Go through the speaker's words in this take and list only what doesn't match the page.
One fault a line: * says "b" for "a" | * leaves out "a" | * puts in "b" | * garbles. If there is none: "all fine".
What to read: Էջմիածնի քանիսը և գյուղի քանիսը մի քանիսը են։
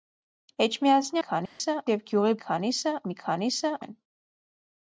all fine